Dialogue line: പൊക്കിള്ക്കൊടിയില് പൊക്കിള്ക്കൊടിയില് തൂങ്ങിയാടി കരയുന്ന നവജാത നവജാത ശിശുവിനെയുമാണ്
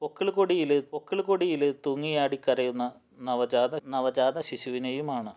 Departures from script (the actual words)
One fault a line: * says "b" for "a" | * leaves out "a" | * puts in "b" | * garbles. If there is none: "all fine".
all fine